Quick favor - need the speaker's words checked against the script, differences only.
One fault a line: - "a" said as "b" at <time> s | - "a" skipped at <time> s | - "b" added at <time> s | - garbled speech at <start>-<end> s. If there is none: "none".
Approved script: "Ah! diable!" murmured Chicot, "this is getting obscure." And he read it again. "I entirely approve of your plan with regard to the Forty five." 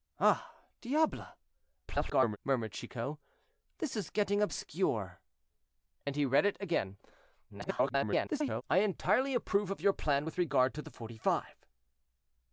- garbled speech at 1.9-2.4 s
- garbled speech at 7.5-8.6 s